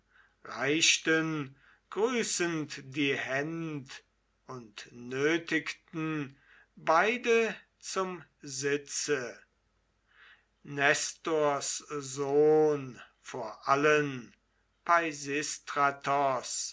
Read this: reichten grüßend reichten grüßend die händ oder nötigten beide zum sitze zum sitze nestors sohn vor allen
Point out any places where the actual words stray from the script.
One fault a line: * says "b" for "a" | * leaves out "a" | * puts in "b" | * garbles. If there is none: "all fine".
* leaves out "reichten grüßend"
* says "und" for "oder"
* leaves out "zum sitze"